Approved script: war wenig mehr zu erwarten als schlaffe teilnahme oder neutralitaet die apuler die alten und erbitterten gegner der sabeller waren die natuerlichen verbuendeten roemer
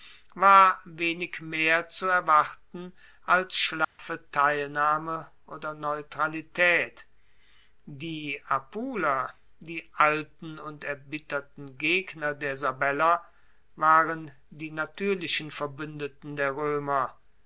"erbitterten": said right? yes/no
yes